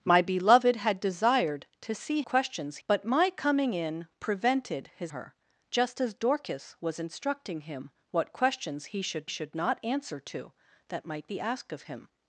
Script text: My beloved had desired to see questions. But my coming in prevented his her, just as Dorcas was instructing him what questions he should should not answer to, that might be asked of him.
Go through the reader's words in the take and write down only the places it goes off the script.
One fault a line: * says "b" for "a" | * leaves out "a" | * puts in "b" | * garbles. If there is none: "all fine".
all fine